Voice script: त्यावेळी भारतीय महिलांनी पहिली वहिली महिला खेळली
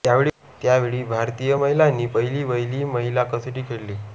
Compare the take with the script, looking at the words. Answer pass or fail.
fail